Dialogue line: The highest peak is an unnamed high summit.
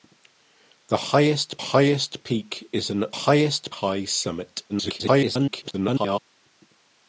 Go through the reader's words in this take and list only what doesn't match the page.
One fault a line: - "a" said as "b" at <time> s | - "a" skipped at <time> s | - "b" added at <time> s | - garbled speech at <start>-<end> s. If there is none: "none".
- "highest" added at 1.6 s
- "unnamed" said as "highest" at 3.1 s
- garbled speech at 4.7-6.2 s